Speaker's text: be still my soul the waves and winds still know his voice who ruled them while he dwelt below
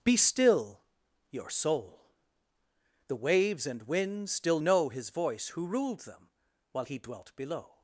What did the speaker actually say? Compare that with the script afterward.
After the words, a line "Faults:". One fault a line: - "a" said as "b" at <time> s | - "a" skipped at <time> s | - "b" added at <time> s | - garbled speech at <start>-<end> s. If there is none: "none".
be still your soul the waves and winds still know his voice who ruled them while he dwelt below
Faults:
- "my" said as "your" at 1.3 s